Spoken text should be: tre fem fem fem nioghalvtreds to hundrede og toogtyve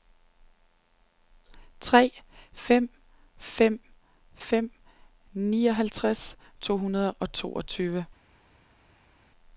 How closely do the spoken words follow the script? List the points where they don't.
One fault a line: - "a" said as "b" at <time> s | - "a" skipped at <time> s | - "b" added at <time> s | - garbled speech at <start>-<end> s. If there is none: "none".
none